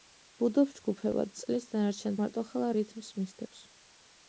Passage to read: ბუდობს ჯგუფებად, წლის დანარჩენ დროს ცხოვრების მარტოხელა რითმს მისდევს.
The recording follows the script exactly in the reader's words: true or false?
false